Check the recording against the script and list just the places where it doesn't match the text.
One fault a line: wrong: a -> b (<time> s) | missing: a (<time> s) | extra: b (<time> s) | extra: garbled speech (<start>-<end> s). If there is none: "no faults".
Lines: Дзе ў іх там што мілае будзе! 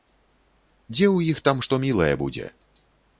no faults